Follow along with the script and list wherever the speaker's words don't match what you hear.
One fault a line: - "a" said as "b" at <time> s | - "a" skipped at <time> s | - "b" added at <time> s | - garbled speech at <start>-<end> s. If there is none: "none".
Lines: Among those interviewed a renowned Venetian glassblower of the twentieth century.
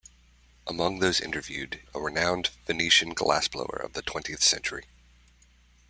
none